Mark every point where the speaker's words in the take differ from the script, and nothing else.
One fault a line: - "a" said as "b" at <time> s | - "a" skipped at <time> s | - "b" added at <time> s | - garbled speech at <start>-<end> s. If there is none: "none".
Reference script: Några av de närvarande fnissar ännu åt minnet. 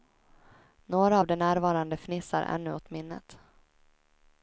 none